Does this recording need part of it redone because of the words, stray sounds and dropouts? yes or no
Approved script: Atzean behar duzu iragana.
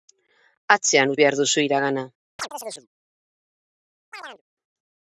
yes